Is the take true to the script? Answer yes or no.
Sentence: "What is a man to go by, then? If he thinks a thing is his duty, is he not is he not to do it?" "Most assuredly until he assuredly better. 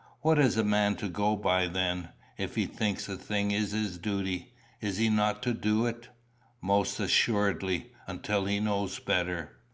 no